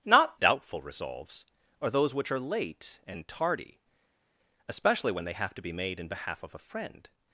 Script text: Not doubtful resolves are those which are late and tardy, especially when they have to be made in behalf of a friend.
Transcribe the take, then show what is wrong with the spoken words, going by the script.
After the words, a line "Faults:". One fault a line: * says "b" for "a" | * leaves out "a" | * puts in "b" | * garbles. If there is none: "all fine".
Not doubtful resolves are those which are late and tardy, especially when they have to be made in behalf of a friend.
Faults:
all fine